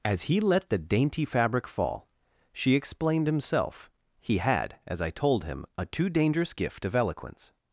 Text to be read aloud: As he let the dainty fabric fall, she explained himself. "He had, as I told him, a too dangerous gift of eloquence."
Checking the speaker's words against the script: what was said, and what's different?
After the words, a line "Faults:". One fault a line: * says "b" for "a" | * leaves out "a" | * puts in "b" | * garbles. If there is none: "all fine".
As he let the dainty fabric fall, she explained himself. "He had, as I told him, a too dangerous gift of eloquence."
Faults:
all fine